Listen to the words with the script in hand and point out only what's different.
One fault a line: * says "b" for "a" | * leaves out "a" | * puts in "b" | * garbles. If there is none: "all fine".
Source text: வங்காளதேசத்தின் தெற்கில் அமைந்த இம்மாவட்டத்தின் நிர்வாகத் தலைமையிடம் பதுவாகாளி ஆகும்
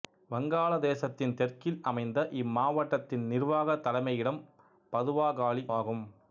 all fine